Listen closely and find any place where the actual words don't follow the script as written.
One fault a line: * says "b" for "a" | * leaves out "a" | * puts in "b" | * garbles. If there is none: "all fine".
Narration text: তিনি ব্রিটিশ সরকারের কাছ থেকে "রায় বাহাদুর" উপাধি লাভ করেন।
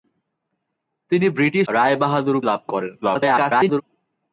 * leaves out "সরকারের কাছ থেকে"
* leaves out "উপাধি"
* garbles